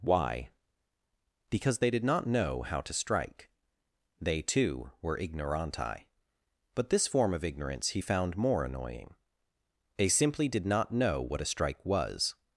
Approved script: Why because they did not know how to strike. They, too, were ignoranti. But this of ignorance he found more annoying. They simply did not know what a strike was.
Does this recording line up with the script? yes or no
no